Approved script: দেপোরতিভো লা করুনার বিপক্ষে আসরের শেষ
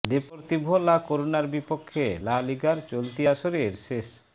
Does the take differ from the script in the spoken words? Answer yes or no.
yes